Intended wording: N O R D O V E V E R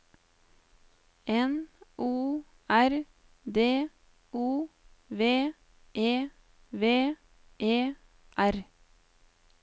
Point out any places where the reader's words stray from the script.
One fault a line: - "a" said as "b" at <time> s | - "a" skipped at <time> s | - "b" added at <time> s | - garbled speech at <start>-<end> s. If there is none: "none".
none